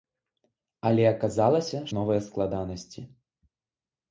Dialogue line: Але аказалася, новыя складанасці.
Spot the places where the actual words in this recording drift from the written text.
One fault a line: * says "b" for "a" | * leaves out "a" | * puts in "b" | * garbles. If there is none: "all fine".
all fine